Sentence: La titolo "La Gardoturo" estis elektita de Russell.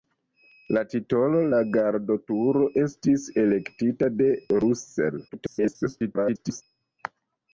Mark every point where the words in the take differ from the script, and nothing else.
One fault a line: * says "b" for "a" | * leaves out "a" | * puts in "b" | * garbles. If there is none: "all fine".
* garbles